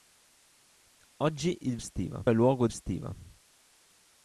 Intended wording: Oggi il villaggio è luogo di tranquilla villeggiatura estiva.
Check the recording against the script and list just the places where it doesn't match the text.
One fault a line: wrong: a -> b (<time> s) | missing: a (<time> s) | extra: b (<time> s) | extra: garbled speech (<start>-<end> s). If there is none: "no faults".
wrong: villaggio -> estiva (1.8 s)
missing: di tranquilla villeggiatura (2.7 s)